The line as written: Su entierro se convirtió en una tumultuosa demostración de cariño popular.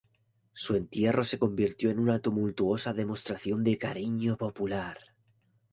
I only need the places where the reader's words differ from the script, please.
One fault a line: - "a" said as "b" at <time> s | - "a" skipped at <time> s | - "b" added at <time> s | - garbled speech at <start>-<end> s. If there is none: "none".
none